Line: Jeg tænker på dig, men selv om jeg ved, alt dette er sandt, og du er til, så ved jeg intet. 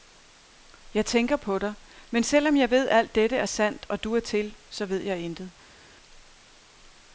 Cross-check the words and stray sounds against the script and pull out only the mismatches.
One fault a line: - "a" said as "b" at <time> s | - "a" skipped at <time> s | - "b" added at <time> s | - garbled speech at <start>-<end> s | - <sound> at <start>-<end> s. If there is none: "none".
none